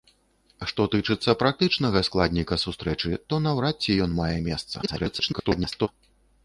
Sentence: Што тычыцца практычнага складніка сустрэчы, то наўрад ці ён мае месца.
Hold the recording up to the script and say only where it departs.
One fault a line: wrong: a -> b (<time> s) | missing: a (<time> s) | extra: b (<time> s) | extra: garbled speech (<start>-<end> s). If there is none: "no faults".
extra: garbled speech (4.8-5.9 s)